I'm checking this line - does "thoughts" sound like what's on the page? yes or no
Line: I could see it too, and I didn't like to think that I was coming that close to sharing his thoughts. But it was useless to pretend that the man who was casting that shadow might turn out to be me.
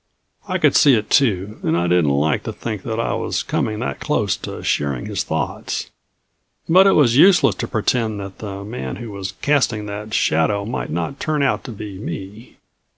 yes